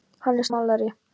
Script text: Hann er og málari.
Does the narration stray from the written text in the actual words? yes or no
no